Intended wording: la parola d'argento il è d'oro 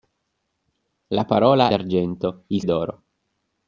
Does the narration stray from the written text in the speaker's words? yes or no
no